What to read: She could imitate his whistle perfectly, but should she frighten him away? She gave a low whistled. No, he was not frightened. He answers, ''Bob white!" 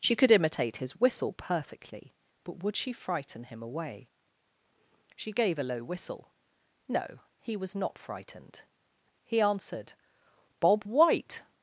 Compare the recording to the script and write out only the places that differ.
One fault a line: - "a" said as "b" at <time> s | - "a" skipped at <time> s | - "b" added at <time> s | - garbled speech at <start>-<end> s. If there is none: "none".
- "should" said as "would" at 2.6 s
- "whistled" said as "whistle" at 5.8 s
- "answers" said as "answered" at 9.4 s